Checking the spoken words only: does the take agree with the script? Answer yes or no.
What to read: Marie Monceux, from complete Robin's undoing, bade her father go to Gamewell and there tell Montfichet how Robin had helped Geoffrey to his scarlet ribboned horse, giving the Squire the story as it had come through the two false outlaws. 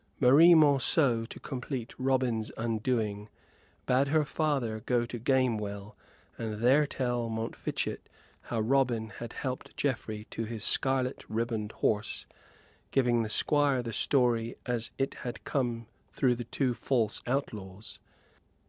no